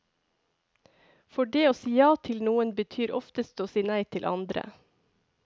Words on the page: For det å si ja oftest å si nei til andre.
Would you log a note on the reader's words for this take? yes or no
yes